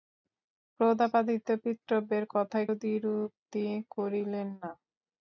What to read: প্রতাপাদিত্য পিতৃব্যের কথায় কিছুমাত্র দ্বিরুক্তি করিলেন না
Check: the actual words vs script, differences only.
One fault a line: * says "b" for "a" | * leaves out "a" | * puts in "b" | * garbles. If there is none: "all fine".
* leaves out "কিছুমাত্র"